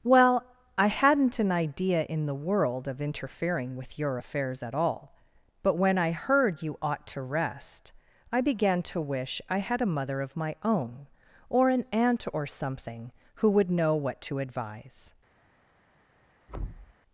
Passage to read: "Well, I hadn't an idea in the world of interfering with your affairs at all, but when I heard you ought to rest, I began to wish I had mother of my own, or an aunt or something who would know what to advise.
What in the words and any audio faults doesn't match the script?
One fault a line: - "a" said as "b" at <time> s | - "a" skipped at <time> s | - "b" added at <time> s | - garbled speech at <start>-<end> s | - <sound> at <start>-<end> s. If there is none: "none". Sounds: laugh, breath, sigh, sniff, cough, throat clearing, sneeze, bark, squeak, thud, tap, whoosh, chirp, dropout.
- "a" added at 9.8 s
- thud at 16.5-16.9 s